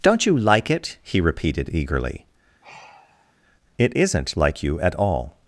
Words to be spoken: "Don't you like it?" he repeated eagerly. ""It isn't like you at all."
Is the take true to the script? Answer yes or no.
yes